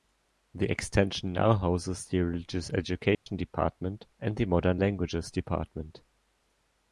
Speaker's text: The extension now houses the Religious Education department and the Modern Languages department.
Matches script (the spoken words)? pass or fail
pass